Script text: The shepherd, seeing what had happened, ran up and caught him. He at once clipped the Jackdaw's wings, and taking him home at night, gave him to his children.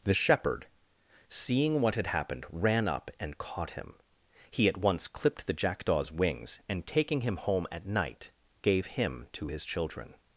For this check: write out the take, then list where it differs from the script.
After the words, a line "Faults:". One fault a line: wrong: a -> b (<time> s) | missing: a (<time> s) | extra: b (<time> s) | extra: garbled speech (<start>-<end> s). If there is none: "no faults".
The shepherd, seeing what had happened, ran up and caught him. He at once clipped the Jackdaw's wings, and taking him home at night, gave him to his children.
Faults:
no faults